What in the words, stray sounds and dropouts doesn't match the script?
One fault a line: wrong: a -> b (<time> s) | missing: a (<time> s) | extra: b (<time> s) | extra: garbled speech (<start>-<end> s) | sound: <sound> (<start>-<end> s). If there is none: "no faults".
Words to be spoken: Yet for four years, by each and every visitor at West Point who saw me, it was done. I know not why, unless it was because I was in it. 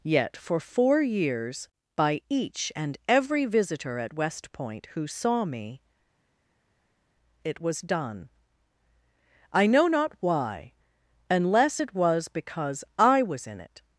no faults